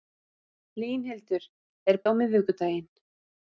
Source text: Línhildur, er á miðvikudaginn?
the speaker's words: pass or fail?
pass